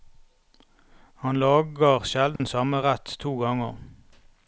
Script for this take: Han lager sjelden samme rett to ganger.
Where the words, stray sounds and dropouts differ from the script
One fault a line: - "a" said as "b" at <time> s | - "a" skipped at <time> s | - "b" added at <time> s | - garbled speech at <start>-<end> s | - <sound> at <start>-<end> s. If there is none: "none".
- dropout at 2.4-2.4 s